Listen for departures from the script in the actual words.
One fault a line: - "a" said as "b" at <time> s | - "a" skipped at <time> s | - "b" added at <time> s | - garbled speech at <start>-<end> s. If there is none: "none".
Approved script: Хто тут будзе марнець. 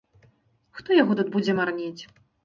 - "яго" added at 1.0 s